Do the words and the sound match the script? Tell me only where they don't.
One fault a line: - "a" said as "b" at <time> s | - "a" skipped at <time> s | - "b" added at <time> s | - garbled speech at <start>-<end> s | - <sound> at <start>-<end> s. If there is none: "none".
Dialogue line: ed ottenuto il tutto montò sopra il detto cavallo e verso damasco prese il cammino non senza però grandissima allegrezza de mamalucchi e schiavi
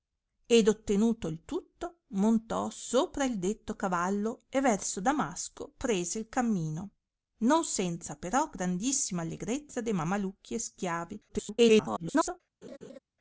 - garbled speech at 11.3-12.4 s
- laugh at 12.6-13.0 s